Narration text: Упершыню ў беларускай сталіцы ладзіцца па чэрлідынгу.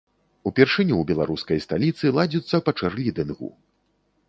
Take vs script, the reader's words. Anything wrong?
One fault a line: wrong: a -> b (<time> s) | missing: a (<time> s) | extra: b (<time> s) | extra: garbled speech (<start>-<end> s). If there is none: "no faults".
no faults